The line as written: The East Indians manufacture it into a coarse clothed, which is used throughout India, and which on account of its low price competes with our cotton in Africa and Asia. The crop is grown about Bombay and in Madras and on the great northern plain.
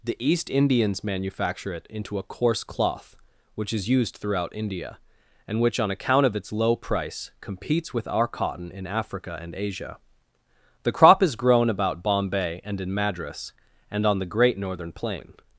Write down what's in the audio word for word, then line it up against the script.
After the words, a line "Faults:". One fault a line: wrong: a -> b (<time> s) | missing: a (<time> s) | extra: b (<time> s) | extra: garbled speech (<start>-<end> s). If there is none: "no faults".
The East Indians manufacture it into a coarse cloth, which is used throughout India, and which on account of its low price competes with our cotton in Africa and Asia. The crop is grown about Bombay and in Madras and on the great northern plain.
Faults:
wrong: clothed -> cloth (2.6 s)